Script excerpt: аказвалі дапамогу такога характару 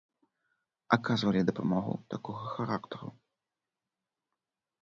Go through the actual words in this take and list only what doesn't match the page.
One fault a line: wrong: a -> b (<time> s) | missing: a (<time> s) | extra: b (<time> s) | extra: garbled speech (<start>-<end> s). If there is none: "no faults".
no faults